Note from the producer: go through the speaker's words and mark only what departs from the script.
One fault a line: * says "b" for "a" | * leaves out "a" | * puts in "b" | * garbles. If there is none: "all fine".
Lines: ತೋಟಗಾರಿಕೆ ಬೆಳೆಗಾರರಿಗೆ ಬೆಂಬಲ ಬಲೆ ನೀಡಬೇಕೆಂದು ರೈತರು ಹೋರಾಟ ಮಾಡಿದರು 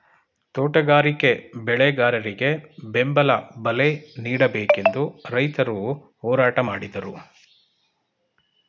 all fine